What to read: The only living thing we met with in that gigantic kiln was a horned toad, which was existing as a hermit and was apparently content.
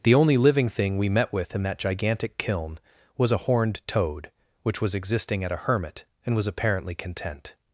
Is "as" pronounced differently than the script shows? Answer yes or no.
yes